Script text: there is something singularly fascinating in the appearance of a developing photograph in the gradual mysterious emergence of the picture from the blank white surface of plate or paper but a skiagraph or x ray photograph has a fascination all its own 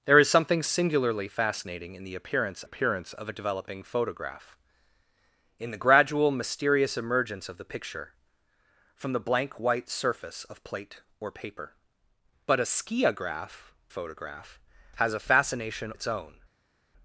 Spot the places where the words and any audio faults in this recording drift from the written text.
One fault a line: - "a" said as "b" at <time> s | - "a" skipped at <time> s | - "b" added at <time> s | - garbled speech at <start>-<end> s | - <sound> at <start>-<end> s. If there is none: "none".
- "appearance" added at 2.6 s
- "or x ray" skipped at 13.7 s
- "all" skipped at 15.9 s